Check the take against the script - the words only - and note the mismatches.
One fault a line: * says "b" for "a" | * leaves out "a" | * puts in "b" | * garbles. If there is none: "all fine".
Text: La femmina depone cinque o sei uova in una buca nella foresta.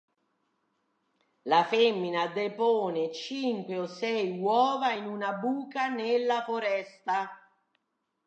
all fine